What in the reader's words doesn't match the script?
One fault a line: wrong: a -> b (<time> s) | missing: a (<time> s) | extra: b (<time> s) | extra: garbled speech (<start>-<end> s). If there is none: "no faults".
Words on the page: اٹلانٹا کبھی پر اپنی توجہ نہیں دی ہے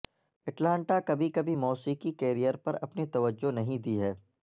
extra: کبھی موسیقی کیریئر (1.3 s)